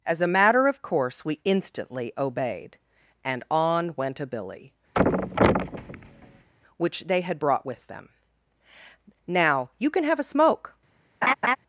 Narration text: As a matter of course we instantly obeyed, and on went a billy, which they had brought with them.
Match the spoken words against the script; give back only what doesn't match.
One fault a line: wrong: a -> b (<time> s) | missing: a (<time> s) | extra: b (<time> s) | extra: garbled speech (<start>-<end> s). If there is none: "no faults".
extra: Now you can have a smoke (9.3 s)